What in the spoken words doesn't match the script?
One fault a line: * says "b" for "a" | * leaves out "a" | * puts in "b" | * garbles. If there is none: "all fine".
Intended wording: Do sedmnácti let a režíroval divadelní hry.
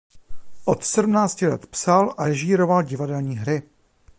* says "Od" for "Do"
* puts in "psal"